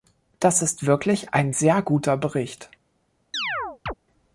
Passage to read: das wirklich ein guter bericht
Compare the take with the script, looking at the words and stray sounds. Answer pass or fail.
fail